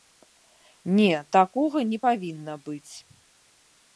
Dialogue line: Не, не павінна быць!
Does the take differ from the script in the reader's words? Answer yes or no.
yes